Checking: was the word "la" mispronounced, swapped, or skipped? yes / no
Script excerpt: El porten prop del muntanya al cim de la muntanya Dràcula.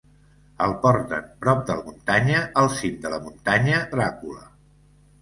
no